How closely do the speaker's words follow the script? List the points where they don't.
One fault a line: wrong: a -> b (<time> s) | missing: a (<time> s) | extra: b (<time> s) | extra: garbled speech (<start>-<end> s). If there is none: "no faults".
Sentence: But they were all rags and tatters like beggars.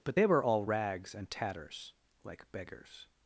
no faults